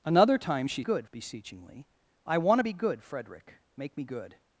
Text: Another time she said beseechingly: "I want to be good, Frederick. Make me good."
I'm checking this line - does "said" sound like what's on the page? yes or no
no